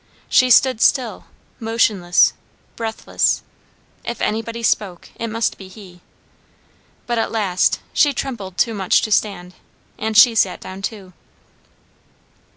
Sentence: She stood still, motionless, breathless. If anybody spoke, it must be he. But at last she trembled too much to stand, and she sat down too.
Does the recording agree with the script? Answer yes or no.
yes